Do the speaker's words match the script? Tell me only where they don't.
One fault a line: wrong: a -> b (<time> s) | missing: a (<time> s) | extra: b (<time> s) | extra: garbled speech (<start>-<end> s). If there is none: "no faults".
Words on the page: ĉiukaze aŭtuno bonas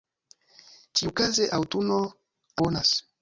no faults